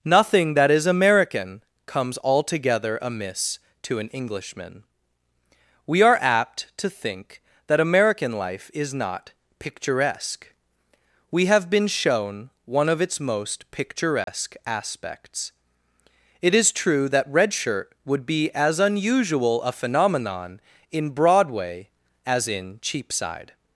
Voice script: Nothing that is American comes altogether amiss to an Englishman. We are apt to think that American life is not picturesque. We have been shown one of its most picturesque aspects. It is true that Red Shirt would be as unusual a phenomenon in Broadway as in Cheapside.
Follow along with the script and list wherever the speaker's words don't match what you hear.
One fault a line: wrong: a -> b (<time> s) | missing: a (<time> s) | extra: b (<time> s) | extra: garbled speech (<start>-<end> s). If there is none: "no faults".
no faults